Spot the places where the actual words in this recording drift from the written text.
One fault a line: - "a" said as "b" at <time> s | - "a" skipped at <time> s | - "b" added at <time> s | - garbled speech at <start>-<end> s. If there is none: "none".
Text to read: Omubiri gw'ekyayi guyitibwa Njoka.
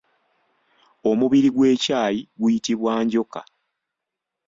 none